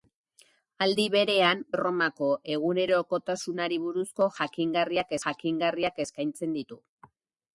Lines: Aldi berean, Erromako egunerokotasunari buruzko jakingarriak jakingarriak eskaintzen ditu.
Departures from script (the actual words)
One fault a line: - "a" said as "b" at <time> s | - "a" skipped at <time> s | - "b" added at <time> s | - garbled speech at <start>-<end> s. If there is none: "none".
none